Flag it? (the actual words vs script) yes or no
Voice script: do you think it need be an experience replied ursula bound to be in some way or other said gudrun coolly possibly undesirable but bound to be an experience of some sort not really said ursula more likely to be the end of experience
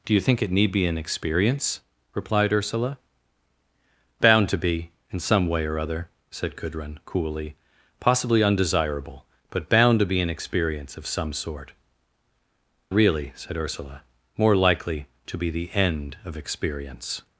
yes